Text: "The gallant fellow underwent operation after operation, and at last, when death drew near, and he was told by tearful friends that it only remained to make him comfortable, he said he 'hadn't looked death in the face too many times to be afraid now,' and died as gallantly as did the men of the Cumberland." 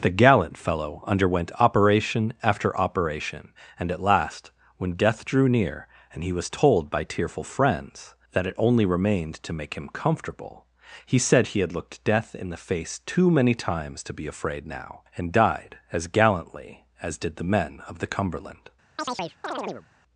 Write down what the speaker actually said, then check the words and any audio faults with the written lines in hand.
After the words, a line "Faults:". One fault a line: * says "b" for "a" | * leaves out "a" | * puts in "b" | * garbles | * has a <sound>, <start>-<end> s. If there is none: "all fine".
"The gallant fellow underwent operation after operation, and at last, when death drew near, and he was told by tearful friends that it only remained to make him comfortable, he said he 'had looked death in the face too many times to be afraid now,' and died as gallantly as did the men of the Cumberland."
Faults:
* says "had" for "hadn't"
* has a chirp, 19.0-19.9 s